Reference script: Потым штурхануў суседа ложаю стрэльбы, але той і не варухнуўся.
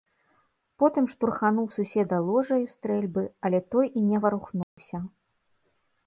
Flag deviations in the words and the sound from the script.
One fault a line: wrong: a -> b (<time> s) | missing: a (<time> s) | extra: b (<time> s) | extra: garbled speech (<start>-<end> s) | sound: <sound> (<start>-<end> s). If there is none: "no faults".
sound: dropout (4.6-4.8 s)